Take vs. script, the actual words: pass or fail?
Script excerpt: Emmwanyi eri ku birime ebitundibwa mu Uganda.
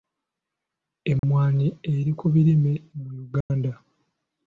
fail